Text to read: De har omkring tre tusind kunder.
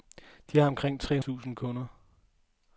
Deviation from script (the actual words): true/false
false